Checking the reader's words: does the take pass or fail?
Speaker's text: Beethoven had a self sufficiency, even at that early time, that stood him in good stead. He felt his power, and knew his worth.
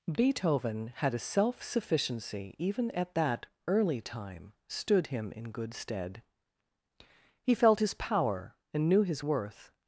fail